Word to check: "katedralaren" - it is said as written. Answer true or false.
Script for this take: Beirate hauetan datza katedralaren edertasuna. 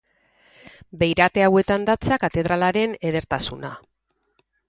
true